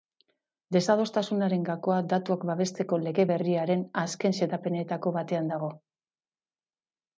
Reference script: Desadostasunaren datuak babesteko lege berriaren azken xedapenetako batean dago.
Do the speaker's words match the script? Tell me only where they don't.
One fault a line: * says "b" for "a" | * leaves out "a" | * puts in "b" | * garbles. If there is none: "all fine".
* puts in "gakoa"